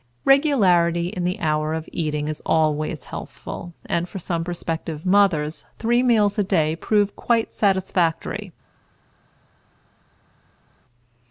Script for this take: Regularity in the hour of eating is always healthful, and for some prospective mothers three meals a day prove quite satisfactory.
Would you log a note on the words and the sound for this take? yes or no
no